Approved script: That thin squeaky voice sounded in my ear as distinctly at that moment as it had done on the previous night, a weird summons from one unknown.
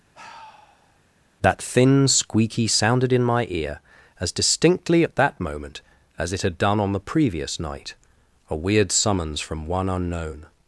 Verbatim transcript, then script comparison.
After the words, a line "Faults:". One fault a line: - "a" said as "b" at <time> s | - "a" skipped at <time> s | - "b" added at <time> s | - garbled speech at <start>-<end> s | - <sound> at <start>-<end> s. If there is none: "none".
That thin squeaky sounded in my ear as distinctly at that moment as it had done on the previous night, a weird summons from one unknown.
Faults:
- sigh at 0.1-1.0 s
- "voice" skipped at 2.7 s